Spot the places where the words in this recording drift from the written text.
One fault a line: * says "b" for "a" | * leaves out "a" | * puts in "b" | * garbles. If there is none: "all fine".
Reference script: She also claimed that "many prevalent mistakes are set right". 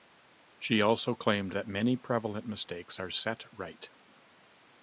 all fine